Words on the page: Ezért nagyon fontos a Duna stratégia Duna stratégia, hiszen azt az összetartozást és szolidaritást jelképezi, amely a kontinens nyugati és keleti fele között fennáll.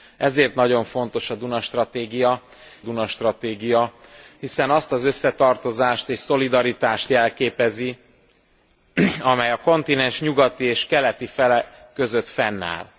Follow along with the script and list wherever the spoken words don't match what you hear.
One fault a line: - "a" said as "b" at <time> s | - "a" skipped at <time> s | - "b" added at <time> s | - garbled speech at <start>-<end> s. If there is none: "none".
none